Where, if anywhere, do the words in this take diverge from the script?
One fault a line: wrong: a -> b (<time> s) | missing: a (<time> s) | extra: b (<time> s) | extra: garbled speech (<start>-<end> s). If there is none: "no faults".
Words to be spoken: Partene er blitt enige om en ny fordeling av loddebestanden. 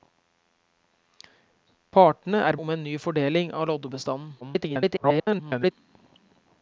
missing: blitt enige (2.6 s)
extra: garbled speech (4.4-5.7 s)